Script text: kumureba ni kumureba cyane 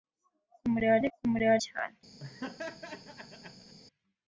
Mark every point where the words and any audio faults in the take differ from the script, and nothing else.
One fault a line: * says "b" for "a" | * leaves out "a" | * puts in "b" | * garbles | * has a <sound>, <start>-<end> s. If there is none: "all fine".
* has a laugh, 2.2-3.7 s